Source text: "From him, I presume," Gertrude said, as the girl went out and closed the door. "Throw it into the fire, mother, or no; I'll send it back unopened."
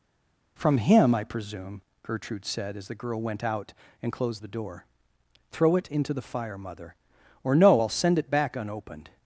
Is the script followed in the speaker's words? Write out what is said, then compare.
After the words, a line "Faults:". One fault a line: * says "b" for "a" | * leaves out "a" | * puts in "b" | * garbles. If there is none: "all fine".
"From him, I presume," Gertrude said, as the girl went out and closed the door. "Throw it into the fire, mother, or no; I'll send it back unopened."
Faults:
all fine